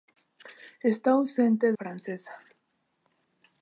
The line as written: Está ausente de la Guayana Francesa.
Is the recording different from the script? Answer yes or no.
yes